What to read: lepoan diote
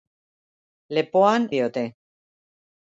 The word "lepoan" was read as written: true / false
true